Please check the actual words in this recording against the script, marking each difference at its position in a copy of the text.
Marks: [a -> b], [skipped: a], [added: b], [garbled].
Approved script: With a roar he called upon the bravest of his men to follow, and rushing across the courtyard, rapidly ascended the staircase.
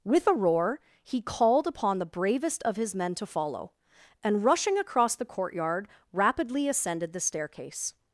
With a roar he called upon the bravest of his men to follow, and rushing across the courtyard, rapidly ascended the staircase.